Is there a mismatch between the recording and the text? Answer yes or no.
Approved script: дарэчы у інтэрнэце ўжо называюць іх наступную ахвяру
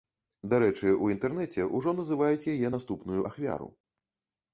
yes